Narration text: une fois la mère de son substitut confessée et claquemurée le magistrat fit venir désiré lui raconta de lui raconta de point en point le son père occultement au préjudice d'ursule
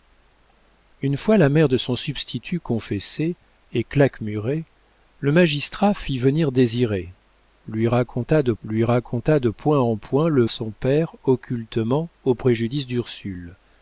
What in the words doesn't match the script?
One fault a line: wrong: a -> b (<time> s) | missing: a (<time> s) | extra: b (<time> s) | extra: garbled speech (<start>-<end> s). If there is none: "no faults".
no faults